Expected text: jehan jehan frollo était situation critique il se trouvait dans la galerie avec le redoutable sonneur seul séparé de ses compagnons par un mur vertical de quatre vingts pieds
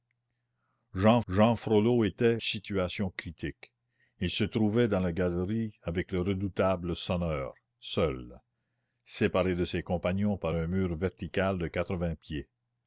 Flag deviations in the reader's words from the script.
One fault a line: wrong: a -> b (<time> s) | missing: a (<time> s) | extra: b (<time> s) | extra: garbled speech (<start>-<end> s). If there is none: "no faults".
no faults